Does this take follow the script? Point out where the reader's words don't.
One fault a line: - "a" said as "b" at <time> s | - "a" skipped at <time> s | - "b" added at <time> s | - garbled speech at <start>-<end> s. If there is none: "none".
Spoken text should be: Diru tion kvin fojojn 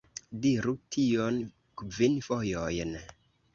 none